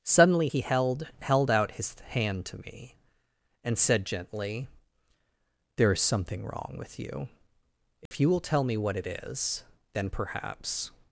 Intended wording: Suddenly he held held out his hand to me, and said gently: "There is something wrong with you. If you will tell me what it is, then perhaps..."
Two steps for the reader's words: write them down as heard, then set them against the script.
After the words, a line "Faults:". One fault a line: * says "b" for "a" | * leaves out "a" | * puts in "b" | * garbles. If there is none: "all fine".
Suddenly he held held out his hand to me, and said gently: "There is something wrong with you. If you will tell me what it is, then perhaps..."
Faults:
all fine